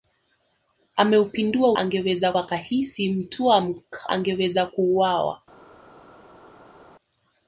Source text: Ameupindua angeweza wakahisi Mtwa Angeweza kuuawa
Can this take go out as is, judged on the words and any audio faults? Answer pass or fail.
pass